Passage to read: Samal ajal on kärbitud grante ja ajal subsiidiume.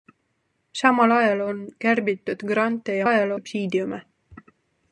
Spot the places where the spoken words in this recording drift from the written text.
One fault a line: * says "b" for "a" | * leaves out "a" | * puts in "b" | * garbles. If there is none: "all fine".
all fine